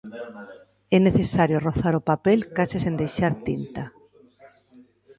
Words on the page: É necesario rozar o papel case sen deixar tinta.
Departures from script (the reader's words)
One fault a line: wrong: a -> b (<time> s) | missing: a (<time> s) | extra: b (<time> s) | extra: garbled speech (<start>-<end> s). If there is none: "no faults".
no faults